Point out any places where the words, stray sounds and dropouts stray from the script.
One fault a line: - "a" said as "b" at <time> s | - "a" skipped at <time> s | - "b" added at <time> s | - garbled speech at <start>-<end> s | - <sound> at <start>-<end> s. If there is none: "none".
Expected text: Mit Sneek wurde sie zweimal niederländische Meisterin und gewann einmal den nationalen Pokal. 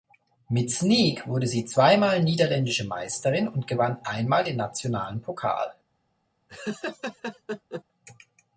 - laugh at 6.5-7.8 s